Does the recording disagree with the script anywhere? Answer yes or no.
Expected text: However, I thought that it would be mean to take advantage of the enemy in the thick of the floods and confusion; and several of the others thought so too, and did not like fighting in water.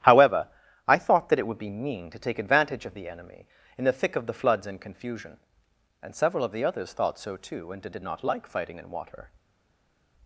yes